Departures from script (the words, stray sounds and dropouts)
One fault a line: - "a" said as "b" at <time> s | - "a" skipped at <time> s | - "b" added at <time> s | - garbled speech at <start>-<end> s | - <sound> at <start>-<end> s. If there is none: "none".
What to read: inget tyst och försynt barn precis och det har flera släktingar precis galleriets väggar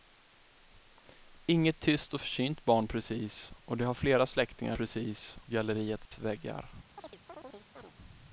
- dropout at 6.1-6.1 s
- chirp at 7.0-7.9 s